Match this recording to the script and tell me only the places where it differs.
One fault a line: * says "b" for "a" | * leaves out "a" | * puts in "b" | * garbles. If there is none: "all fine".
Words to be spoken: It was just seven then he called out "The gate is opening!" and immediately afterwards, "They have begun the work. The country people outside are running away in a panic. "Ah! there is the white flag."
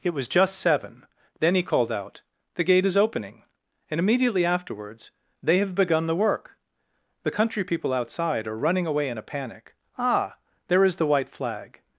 all fine